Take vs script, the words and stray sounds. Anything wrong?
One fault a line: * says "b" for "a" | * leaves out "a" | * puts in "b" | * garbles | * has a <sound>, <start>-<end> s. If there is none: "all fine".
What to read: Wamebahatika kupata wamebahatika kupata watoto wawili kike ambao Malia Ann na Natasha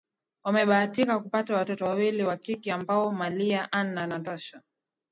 * leaves out "wamebahatika kupata"
* puts in "wa"